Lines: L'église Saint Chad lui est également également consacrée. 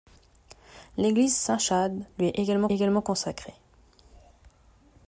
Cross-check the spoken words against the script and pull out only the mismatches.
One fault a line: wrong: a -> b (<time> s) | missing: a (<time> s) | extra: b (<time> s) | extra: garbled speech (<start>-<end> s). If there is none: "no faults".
no faults